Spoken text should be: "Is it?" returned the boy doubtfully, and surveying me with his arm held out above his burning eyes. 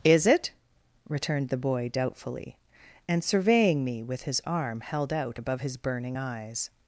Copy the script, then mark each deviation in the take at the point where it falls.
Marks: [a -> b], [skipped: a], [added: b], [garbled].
"Is it?" returned the boy doubtfully, and surveying me with his arm held out above his burning eyes.